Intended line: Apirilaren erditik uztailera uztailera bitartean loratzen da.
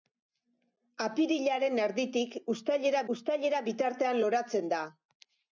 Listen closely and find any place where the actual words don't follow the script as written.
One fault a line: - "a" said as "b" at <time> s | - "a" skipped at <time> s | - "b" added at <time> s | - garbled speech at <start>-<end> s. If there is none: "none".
none